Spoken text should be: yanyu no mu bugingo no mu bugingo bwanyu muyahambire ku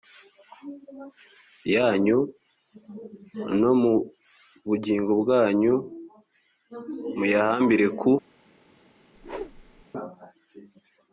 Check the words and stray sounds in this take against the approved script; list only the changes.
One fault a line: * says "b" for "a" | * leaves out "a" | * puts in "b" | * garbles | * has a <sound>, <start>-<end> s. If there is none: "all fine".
* leaves out "no mu bugingo"
* has a whoosh, 9.1-9.9 s